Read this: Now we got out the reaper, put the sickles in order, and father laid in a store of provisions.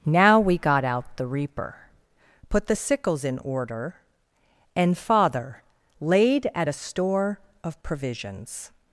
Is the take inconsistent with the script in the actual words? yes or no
yes